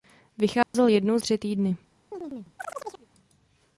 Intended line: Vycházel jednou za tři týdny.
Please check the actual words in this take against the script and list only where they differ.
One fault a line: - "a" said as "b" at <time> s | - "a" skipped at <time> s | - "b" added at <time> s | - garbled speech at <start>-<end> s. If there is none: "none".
- "za" skipped at 1.2 s